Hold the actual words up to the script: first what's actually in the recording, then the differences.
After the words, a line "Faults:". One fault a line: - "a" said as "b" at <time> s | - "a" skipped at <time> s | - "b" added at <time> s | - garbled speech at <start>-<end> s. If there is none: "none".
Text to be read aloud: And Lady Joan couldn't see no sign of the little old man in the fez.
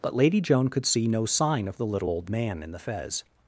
But Lady Joan could see no sign of the little old man in the fez.
Faults:
- "And" said as "But" at 0.0 s
- "couldn't" said as "could" at 0.7 s